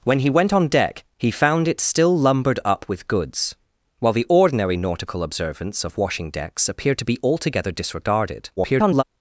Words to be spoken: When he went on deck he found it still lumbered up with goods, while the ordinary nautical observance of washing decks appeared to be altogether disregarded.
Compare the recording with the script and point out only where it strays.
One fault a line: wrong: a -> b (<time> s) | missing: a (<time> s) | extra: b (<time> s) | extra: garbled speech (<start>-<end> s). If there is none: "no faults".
extra: garbled speech (8.6-9.0 s)